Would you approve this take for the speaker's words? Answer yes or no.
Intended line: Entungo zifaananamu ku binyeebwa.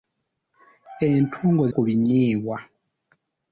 no